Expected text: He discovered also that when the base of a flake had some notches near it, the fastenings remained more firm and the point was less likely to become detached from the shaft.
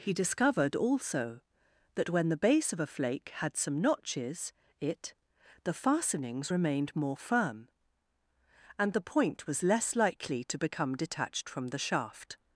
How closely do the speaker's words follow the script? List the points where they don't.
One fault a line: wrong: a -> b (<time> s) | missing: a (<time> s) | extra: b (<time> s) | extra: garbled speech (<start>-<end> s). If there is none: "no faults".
missing: near (4.5 s)